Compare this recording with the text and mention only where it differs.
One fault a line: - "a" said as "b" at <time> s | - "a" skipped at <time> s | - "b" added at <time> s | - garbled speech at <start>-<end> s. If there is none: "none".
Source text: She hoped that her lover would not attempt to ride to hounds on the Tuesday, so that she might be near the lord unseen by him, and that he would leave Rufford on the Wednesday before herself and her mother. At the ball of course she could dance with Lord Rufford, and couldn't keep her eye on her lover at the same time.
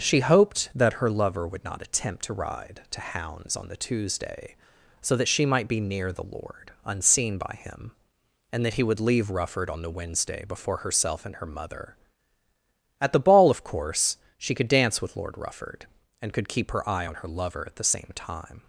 - "couldn't" said as "could" at 16.3 s